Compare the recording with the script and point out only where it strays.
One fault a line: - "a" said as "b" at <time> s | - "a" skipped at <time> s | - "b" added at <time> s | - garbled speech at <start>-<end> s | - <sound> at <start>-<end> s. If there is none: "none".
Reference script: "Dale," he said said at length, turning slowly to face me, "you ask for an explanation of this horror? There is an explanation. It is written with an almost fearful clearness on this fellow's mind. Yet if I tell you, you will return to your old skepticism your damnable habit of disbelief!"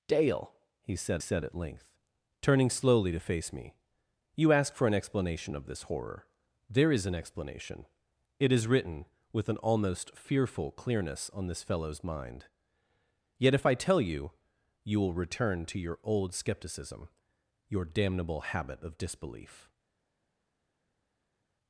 none